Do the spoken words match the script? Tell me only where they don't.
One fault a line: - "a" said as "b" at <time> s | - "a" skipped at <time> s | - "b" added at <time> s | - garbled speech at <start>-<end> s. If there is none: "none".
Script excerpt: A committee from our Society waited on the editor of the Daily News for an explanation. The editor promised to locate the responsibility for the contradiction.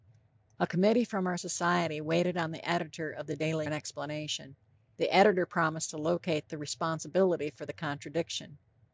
- "News for" skipped at 3.7 s